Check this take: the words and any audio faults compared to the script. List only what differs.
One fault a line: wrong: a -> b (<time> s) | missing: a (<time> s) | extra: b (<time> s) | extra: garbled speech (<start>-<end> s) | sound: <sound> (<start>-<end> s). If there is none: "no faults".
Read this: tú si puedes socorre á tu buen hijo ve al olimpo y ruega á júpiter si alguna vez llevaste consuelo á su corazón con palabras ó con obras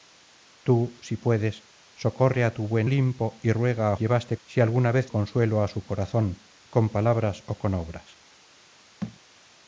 missing: hijo ve al (2.9 s)
wrong: júpiter -> llevaste (4.0 s)
missing: llevaste (5.1 s)
sound: thud (9.0-9.2 s)